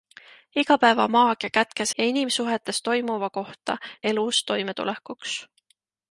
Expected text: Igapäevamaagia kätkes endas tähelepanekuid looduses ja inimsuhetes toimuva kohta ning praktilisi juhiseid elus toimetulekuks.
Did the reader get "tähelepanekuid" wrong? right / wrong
wrong